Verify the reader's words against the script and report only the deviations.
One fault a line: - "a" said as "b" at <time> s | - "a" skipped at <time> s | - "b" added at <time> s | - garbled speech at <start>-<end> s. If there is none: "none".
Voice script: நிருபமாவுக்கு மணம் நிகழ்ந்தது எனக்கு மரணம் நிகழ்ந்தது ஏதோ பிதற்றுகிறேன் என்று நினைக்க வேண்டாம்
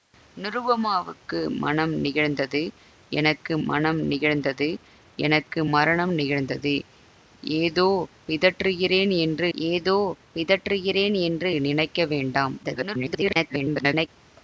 - "மணம் நிகழ்ந்தது எனக்கு" added at 3.7 s
- "ஏதோ பிதற்றுகிறேன் என்று" added at 9.5 s
- garbled speech at 12.6-14.1 s